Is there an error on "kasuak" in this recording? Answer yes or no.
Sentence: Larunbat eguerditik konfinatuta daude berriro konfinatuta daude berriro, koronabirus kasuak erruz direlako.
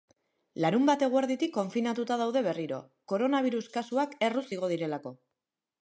no